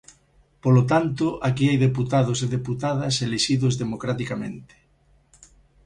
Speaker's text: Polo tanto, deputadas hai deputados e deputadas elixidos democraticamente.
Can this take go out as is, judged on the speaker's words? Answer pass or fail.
fail